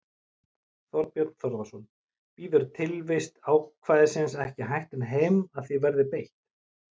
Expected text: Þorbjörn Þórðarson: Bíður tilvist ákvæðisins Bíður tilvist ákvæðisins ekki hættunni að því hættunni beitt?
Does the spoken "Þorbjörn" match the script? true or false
true